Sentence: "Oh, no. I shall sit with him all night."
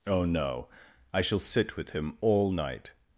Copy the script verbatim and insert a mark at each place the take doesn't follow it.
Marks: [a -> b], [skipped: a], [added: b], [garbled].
"Oh, no. I shall sit with him all night."